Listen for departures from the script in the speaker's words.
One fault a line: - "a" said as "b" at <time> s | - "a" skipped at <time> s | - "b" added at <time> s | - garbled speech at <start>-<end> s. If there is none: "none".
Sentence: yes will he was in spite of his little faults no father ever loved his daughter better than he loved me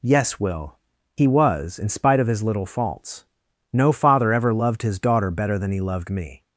none